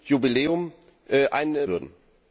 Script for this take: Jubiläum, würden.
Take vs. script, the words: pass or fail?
pass